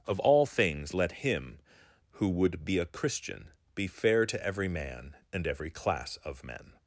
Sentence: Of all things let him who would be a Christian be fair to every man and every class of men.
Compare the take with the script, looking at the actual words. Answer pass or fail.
pass